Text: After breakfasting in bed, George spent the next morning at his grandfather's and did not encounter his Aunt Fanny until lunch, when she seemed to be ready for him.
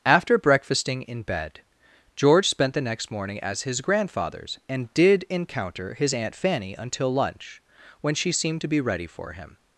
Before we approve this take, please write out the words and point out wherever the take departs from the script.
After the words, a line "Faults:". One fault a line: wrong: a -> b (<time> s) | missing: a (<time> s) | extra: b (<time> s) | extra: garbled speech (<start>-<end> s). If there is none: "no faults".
After breakfasting in bed, George spent the next morning as his grandfather's and did encounter his Aunt Fanny until lunch, when she seemed to be ready for him.
Faults:
wrong: at -> as (3.4 s)
missing: not (5.2 s)